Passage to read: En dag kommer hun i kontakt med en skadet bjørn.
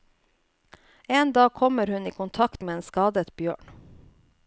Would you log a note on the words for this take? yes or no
no